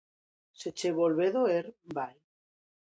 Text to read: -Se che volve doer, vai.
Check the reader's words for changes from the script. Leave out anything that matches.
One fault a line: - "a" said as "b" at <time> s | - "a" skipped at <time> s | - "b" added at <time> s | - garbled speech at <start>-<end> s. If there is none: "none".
none